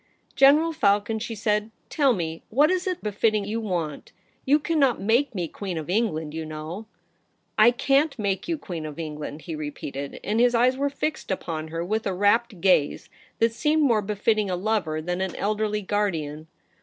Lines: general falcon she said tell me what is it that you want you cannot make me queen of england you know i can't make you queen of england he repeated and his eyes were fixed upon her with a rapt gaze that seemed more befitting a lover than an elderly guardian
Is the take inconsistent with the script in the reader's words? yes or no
yes